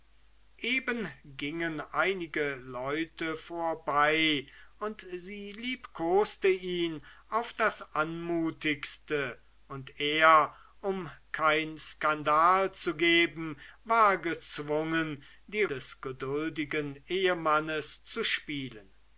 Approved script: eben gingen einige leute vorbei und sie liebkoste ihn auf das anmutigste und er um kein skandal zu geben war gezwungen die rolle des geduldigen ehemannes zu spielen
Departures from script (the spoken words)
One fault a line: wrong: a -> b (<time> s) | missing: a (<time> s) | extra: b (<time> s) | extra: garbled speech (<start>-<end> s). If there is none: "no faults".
missing: rolle (15.7 s)